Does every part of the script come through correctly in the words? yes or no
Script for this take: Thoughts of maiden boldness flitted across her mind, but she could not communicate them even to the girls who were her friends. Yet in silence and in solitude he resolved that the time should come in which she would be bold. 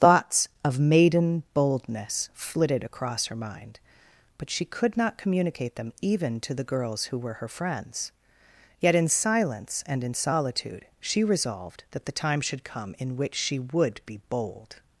no